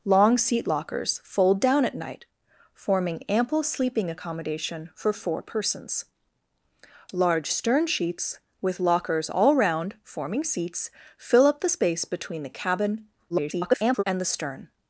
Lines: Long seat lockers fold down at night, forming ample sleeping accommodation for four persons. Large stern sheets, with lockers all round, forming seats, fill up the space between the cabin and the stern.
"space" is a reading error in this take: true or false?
false